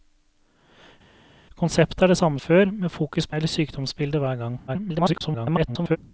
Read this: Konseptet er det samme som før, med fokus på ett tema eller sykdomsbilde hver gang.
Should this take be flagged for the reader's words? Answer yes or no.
yes